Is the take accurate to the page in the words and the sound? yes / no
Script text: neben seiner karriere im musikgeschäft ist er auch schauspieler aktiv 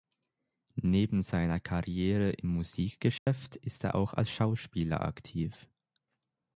no